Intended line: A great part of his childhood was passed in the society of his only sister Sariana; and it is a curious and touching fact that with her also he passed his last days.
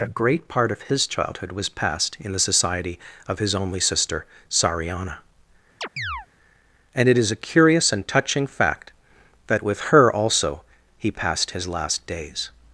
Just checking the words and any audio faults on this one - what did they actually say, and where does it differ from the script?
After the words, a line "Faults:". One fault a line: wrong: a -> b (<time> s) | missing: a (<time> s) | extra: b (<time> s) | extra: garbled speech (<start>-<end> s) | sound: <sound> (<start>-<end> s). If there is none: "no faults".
A great part of his childhood was passed in the society of his only sister Sariana; and it is a curious and touching fact that with her also he passed his last days.
Faults:
sound: chirp (5.8-6.3 s)